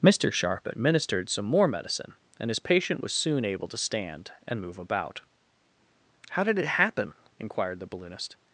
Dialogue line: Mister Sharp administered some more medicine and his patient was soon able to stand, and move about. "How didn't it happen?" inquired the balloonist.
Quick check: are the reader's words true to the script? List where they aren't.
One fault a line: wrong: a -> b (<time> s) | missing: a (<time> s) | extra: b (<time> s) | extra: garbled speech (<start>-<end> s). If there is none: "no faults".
wrong: didn't -> did (6.4 s)